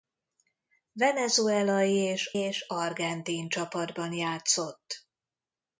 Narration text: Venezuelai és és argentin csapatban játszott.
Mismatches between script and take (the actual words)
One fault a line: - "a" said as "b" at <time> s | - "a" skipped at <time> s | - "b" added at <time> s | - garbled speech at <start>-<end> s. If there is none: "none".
none